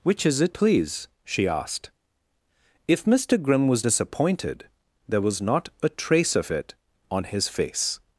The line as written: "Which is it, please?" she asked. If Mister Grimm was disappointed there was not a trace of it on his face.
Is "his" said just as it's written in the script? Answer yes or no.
yes